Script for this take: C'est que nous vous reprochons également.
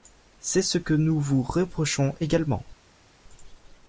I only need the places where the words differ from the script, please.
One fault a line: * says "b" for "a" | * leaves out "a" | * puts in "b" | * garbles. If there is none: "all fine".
* puts in "ce"